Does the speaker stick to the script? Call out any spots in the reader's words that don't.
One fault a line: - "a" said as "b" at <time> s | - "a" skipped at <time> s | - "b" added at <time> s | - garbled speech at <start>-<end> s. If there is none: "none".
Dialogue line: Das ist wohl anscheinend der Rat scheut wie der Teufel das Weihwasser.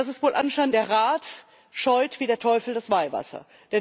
none